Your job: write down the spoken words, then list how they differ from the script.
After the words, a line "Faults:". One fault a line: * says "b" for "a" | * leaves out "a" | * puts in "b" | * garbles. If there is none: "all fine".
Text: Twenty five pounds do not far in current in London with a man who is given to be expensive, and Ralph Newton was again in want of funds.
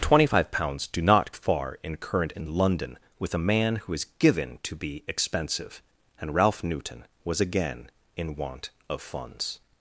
Twenty five pounds do not far in current in London with a man who is given to be expensive, and Ralph Newton was again in want of funds.
Faults:
all fine